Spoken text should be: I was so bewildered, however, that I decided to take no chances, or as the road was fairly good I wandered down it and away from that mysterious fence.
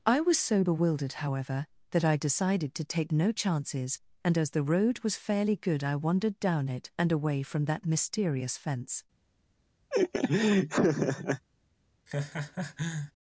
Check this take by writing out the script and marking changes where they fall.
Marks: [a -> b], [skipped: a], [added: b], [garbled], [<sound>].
I was so bewildered, however, that I decided to take no chances, [or -> and] as the road was fairly good I wandered down it and away from that mysterious fence. [laugh] [laugh]